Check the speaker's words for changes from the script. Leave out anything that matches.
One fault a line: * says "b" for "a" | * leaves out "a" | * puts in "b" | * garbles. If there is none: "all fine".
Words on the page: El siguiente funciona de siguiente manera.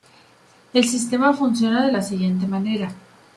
* says "sistema" for "siguiente"
* puts in "la"